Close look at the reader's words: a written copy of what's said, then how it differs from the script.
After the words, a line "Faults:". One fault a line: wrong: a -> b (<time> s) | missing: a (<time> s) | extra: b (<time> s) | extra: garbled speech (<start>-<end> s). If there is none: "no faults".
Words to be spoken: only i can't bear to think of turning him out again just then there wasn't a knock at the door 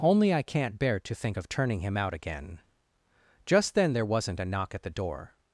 only i can't bear to think of turning him out again just then there wasn't a knock at the door
Faults:
no faults